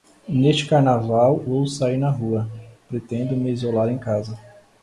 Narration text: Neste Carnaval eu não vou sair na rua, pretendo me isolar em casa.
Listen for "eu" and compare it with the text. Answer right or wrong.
wrong